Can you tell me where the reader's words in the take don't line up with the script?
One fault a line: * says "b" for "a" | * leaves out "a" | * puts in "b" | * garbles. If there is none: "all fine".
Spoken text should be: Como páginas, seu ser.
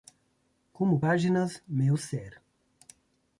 * says "meu" for "seu"